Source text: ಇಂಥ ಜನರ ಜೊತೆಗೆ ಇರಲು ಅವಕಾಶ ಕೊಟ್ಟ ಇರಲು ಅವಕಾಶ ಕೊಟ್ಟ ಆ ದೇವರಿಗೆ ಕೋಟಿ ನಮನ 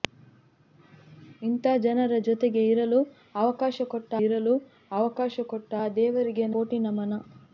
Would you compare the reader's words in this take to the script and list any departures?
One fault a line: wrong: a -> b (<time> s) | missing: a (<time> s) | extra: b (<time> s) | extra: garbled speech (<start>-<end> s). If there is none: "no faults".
no faults